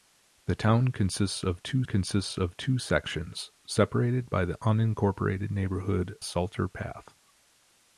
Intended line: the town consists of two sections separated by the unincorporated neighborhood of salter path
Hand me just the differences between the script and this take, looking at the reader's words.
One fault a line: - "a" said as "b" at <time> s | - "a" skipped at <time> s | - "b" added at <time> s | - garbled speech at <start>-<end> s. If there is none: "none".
- "consists of two" added at 1.8 s
- "of" skipped at 6.2 s